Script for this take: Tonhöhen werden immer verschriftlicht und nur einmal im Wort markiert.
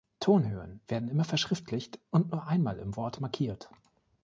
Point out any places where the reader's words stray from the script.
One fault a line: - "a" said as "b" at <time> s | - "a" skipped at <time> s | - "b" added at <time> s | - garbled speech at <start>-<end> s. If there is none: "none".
none